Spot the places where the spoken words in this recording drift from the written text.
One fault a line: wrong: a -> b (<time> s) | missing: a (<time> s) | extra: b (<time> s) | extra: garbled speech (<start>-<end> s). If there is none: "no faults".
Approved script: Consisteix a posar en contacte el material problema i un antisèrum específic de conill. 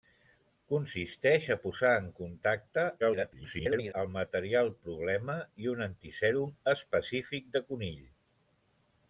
extra: garbled speech (3.0-3.9 s)